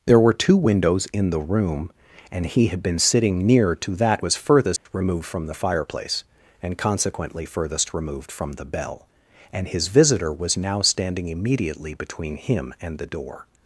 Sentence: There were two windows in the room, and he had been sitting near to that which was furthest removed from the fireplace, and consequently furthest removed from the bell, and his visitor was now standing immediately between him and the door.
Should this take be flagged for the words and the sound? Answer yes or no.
yes